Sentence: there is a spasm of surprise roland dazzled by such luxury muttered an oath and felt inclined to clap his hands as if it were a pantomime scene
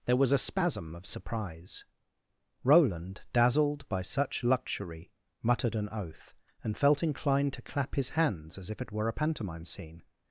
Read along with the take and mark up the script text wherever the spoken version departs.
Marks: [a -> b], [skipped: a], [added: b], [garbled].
there [is -> was] a spasm of surprise roland dazzled by such luxury muttered an oath and felt inclined to clap his hands as if it were a pantomime scene